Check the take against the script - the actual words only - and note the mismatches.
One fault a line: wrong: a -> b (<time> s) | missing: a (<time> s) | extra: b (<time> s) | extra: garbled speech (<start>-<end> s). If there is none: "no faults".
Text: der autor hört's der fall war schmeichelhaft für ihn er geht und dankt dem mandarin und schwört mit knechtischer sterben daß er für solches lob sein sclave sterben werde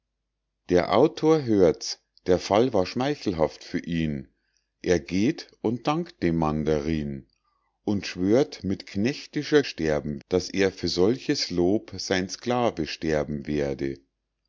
no faults